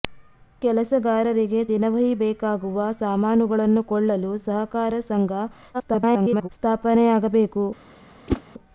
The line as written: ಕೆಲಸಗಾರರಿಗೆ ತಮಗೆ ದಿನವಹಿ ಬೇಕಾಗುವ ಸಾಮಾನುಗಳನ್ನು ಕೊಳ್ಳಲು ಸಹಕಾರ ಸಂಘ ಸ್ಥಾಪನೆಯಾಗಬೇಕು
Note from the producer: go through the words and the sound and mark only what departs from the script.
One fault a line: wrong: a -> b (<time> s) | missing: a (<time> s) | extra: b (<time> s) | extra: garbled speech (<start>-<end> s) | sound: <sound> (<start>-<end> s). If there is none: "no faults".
missing: ತಮಗೆ (1.6 s)
extra: garbled speech (5.7-6.5 s)
sound: whoosh (8.3-8.4 s)